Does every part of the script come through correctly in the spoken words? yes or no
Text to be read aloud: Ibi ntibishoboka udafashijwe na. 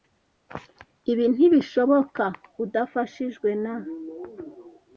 yes